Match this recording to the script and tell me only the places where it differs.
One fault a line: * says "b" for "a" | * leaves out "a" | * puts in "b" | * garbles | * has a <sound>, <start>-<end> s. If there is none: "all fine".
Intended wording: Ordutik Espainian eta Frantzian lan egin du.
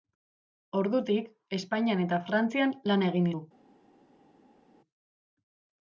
all fine